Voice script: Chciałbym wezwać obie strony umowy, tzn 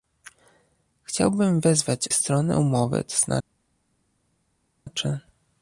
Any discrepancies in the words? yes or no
yes